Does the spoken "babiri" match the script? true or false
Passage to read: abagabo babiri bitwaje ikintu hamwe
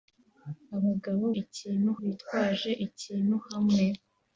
false